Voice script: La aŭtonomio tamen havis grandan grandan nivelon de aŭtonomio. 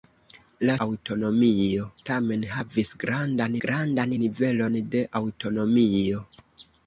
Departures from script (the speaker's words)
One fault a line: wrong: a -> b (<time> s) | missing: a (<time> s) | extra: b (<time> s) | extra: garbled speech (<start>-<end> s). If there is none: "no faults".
no faults